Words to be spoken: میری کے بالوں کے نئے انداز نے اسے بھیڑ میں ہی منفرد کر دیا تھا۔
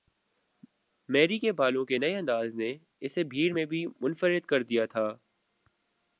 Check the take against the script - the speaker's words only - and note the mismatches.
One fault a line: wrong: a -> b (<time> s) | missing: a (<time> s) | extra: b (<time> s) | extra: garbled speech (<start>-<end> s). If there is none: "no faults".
wrong: ہی -> بھی (3.7 s)